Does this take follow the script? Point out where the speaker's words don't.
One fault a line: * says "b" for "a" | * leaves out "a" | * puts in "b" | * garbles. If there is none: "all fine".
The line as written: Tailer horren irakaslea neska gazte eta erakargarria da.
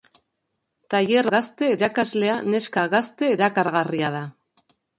* says "gazte" for "horren"
* leaves out "eta"